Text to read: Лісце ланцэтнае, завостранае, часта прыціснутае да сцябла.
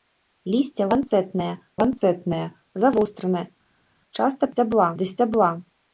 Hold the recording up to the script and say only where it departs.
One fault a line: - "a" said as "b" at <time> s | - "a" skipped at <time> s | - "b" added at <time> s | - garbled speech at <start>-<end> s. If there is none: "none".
- "ланцэтнае" added at 1.8 s
- "прыціснутае" said as "сцябла" at 4.5 s